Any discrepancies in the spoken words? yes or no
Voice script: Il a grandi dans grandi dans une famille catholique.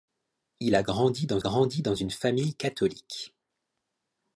no